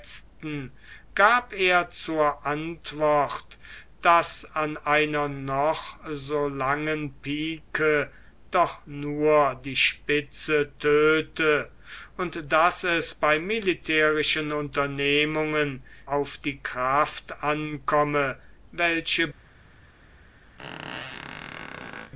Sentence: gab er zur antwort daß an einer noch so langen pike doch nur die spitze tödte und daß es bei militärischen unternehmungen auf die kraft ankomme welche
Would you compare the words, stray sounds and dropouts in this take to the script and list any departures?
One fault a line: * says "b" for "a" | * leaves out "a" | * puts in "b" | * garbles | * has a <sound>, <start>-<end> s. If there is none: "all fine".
* has a squeak, 20.6-22.1 s